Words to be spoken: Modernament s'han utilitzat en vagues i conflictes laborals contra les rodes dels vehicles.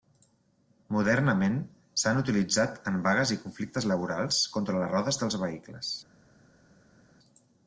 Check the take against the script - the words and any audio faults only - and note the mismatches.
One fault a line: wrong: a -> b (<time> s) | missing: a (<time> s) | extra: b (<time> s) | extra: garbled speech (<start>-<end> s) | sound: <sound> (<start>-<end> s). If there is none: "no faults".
no faults